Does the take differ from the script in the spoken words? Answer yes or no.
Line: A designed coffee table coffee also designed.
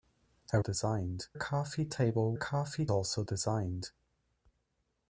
no